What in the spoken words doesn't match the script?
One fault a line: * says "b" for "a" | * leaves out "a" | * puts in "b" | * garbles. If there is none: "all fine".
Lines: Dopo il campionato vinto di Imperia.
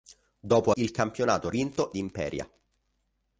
all fine